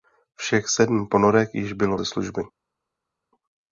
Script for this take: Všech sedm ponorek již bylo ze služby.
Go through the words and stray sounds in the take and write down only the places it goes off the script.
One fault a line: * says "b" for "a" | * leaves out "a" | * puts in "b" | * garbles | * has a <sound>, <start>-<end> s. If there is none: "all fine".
all fine